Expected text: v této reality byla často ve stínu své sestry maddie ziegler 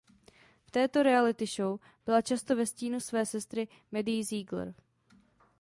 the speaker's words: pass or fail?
fail